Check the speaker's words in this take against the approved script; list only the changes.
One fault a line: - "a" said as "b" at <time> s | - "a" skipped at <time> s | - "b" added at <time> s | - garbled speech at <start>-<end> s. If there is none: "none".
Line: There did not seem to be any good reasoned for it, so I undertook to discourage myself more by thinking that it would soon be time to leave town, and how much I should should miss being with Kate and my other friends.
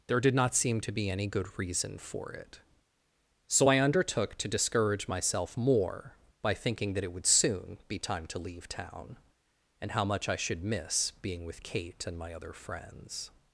- "reasoned" said as "reason" at 1.6 s
- "should" skipped at 10.6 s